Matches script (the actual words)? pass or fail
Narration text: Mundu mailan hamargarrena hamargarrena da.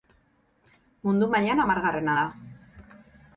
fail